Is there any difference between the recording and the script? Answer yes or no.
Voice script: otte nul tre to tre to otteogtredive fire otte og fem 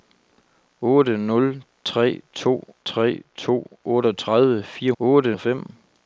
no